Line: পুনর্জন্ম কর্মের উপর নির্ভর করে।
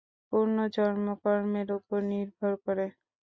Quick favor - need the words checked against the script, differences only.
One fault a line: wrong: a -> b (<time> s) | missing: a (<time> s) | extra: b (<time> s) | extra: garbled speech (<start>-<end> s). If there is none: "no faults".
no faults